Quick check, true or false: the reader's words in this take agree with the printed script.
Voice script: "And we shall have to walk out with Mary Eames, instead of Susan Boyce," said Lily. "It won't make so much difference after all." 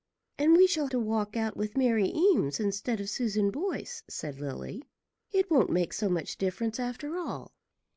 false